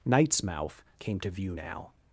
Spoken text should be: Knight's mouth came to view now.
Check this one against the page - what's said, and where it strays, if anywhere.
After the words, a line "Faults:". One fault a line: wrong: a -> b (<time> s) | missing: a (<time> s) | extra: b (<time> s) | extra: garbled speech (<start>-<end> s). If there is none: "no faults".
Knight's mouth came to view now.
Faults:
no faults